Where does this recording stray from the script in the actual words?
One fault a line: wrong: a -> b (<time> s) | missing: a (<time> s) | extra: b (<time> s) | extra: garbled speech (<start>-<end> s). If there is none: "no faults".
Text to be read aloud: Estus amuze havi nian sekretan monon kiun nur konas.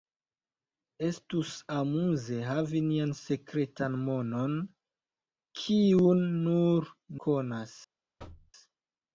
no faults